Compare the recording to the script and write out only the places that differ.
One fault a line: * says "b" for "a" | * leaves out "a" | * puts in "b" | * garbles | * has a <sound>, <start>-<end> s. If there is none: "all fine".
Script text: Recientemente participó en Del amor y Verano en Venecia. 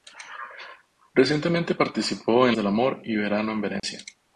* has a dropout, 3.8-3.8 s